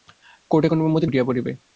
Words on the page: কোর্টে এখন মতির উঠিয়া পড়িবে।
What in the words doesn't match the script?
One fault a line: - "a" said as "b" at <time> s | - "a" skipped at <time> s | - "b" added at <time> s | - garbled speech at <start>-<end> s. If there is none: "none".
none